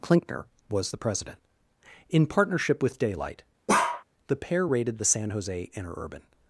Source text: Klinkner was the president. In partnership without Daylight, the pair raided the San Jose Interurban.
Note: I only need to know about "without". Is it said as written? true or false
false